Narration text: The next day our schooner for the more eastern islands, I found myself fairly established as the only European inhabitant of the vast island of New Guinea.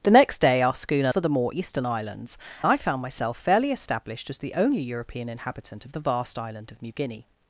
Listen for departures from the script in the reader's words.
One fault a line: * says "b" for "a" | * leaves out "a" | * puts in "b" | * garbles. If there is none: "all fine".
all fine